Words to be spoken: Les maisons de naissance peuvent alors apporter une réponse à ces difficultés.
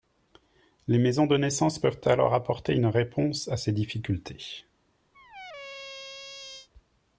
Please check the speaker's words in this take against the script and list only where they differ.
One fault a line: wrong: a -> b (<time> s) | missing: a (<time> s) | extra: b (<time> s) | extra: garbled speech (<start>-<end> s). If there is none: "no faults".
no faults